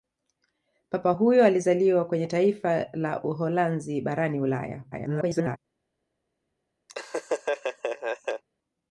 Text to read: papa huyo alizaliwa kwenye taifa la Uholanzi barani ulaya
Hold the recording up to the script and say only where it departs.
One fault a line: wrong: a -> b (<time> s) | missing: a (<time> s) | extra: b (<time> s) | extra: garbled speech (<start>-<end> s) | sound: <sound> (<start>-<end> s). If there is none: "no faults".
extra: garbled speech (4.9-5.6 s)
sound: laugh (6.9-8.4 s)